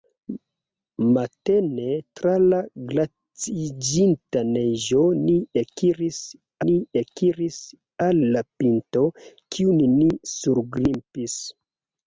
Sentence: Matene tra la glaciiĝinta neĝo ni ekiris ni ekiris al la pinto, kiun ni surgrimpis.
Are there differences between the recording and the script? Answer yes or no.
no